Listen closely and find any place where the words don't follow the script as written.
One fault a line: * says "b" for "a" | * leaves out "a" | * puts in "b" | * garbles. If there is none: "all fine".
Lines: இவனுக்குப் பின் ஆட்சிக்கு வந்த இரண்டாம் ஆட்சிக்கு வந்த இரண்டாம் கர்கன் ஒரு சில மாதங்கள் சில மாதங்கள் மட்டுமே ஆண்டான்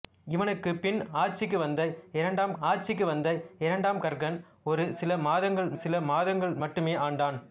all fine